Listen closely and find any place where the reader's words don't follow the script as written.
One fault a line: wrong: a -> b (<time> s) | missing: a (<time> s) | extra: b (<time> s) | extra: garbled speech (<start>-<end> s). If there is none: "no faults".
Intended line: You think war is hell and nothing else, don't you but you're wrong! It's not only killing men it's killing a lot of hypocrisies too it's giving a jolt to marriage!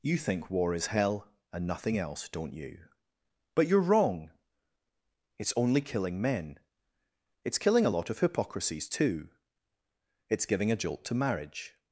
missing: not (5.5 s)